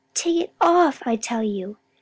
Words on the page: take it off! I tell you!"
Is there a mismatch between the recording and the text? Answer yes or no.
no